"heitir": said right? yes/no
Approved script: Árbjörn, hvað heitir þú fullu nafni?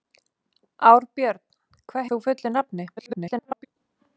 no